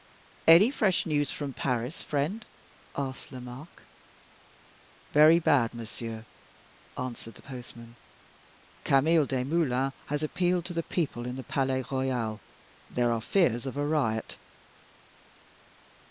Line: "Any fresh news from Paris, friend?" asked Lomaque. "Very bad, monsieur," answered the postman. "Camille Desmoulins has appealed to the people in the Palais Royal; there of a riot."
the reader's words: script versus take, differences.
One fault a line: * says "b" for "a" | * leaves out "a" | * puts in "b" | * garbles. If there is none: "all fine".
* puts in "are fears"